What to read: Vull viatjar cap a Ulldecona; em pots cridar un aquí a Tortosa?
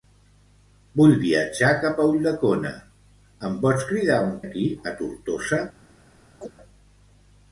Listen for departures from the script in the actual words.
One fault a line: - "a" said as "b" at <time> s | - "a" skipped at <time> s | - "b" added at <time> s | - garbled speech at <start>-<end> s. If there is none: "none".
none